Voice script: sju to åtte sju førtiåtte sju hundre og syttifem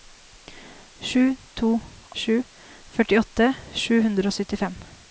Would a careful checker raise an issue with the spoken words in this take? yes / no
yes